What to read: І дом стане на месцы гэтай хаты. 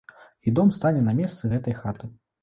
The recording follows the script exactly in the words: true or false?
true